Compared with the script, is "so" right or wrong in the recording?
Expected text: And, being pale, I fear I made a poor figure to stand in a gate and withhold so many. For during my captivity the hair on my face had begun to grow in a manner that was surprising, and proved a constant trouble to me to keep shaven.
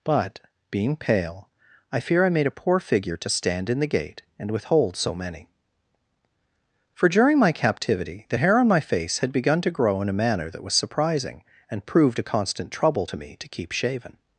right